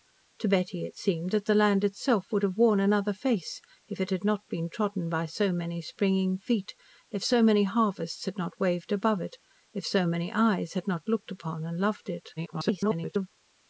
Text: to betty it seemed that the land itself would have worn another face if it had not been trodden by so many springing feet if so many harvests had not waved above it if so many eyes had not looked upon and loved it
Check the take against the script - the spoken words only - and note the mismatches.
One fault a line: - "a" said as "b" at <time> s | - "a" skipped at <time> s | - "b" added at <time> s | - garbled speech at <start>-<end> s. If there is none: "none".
- garbled speech at 12.4-13.3 s